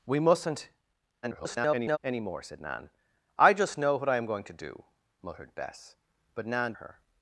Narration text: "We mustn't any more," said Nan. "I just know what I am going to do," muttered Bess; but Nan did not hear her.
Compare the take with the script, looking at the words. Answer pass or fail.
fail